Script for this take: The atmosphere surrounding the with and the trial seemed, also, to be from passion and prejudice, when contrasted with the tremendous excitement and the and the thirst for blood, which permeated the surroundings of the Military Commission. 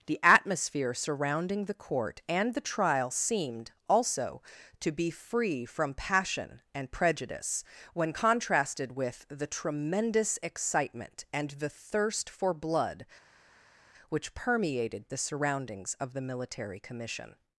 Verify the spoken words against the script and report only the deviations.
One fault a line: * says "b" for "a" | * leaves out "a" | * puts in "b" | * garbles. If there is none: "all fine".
* says "court" for "with"
* puts in "free"
* leaves out "and the"